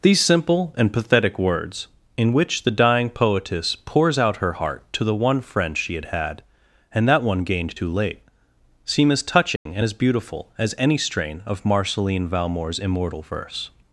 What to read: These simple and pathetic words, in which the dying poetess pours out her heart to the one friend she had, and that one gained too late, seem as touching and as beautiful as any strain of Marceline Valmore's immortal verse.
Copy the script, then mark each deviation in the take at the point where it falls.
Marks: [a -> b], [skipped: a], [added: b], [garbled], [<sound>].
These simple and pathetic words, in which the dying poetess pours out her heart to the one friend she had, [added: had] and that one gained too late, seem as touching [dropout] and as beautiful as any strain of Marceline Valmore's immortal verse.